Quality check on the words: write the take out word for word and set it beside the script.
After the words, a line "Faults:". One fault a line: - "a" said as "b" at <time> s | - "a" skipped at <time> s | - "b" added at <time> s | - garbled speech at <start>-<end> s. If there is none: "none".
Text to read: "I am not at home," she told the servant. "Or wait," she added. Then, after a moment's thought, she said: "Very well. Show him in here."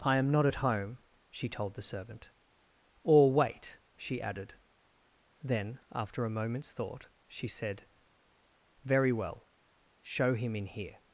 "I am not at home," she told the servant. "Or wait," she added. Then, after a moment's thought, she said: "Very well. Show him in here."
Faults:
none